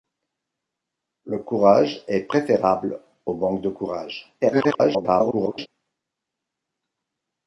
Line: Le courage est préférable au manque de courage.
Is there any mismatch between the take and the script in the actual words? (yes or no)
yes